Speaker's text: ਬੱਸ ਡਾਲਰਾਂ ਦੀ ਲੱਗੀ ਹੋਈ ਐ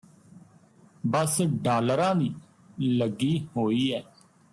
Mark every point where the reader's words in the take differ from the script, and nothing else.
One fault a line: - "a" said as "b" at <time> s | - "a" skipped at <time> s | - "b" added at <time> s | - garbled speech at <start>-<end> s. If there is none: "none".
none